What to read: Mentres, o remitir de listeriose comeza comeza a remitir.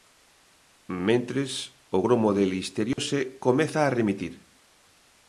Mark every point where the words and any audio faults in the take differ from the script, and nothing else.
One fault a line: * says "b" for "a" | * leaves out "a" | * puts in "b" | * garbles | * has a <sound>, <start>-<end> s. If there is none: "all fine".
* says "gromo" for "remitir"
* has a dropout, 2.9-3.0 s
* leaves out "comeza"